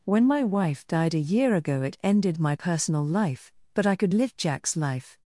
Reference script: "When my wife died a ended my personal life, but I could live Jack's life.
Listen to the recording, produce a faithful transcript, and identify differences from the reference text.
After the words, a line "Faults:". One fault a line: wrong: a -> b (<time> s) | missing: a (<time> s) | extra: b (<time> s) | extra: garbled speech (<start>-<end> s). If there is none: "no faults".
"When my wife died a year ago it ended my personal life, but I could live Jack's life.
Faults:
extra: year ago it (1.2 s)